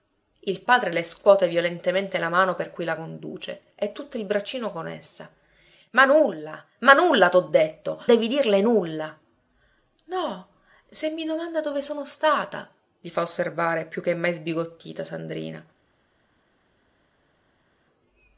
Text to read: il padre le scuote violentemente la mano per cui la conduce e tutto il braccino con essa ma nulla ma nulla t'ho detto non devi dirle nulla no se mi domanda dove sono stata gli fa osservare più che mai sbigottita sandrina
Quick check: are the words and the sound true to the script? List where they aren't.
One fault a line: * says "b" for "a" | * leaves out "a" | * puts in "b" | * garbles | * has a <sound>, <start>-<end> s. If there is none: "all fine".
* leaves out "non"